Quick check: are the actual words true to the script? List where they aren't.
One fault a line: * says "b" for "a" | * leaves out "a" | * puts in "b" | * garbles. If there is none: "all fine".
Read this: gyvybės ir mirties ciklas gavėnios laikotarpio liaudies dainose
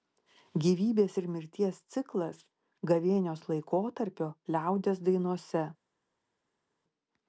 all fine